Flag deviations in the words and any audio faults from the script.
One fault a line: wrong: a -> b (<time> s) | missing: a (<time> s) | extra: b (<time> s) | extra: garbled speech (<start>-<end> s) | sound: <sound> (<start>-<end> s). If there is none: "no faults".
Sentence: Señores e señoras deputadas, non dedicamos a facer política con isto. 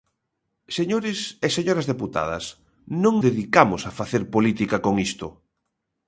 no faults